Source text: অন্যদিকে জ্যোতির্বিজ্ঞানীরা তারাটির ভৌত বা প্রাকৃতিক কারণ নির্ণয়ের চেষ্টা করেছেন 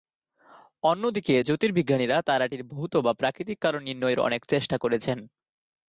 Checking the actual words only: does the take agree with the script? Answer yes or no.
no